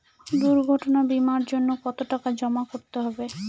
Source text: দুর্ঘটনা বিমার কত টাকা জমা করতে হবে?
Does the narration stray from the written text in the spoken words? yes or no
yes